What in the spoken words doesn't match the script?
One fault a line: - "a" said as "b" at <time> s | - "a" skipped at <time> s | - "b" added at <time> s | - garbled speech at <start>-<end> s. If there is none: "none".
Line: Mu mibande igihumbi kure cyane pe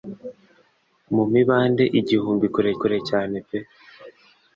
- "kure" added at 2.8 s